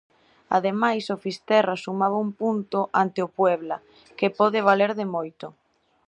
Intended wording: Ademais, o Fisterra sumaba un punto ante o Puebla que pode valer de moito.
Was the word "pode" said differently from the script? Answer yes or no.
no